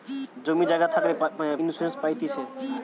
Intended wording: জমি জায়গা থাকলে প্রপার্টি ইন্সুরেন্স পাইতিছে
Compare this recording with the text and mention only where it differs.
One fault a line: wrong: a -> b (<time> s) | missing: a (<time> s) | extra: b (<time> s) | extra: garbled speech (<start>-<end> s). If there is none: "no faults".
missing: প্রপার্টি (1.1 s)